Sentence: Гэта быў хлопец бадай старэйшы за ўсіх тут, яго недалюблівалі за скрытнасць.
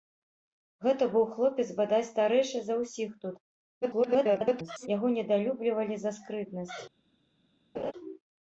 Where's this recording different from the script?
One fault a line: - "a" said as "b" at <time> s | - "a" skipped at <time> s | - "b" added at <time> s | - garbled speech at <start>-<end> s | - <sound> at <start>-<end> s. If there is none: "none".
- garbled speech at 3.8-4.9 s
- laugh at 7.7-7.9 s